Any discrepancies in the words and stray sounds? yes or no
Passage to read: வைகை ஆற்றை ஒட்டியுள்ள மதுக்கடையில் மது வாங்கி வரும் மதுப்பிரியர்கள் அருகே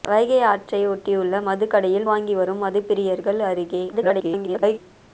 yes